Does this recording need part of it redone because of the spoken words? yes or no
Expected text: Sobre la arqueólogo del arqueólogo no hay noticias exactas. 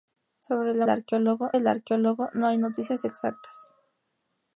no